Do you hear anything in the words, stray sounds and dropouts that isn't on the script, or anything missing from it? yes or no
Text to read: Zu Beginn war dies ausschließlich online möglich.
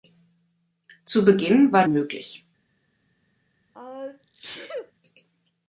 yes